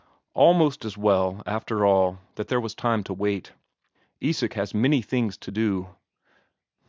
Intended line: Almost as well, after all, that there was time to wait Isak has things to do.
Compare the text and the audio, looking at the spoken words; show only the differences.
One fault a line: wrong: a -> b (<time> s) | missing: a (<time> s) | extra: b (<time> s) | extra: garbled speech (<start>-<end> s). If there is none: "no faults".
extra: many (4.7 s)